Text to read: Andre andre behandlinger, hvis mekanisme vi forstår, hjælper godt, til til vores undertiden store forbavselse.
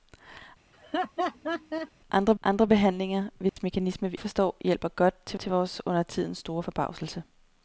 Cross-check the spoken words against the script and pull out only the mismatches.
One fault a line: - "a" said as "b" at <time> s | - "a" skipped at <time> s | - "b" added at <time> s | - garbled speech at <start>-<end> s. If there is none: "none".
none